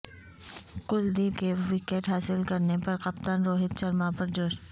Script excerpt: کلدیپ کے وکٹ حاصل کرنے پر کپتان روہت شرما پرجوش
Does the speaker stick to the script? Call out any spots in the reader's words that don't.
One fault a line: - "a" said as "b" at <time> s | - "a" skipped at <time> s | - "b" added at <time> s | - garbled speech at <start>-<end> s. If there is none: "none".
none